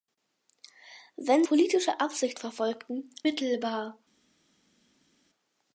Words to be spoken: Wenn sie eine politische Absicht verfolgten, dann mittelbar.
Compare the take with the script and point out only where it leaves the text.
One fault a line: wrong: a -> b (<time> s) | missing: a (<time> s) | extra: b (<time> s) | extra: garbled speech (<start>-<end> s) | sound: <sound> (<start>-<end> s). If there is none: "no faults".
missing: sie eine (1.4 s)
missing: dann (3.1 s)